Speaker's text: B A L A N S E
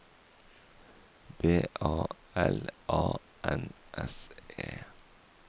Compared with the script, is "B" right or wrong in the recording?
right